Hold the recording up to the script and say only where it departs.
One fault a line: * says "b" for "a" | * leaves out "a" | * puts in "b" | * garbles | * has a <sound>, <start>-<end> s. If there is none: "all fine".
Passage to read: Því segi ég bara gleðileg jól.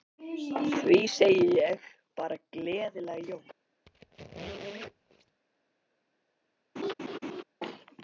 * has a squeak, 3.9-5.4 s
* has a laugh, 6.8-7.4 s